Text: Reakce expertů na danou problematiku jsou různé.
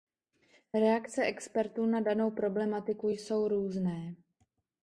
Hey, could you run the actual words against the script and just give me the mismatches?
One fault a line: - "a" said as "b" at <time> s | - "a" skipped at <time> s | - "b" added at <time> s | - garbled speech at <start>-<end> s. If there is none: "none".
none